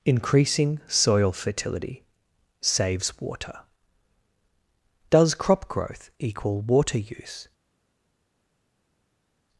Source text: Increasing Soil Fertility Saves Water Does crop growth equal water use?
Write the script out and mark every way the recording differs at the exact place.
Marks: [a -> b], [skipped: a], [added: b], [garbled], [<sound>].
Increasing Soil Fertility Saves Water Does crop growth equal water use?